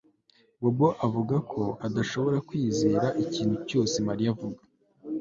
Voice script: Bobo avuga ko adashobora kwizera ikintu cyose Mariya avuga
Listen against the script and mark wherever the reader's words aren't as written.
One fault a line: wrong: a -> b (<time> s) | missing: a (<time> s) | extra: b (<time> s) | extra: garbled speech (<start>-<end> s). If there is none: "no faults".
no faults